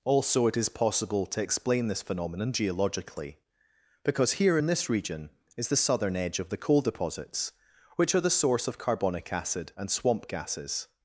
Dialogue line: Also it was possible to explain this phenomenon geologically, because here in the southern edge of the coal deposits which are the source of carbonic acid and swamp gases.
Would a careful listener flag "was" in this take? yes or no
yes